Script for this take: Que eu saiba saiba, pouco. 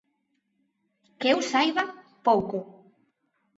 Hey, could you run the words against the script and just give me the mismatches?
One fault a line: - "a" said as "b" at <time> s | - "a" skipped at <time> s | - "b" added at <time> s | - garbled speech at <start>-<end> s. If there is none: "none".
- "saiba" skipped at 1.8 s